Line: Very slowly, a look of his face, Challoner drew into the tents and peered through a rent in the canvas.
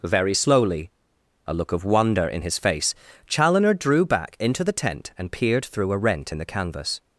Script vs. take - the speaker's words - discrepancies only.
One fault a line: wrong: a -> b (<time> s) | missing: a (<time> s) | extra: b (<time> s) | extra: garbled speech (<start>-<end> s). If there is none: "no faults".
extra: wonder in (1.8 s)
extra: back (4.0 s)
wrong: tents -> tent (4.7 s)